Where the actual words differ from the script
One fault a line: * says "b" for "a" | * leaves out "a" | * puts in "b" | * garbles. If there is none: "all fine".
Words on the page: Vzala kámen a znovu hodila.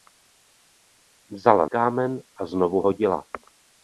all fine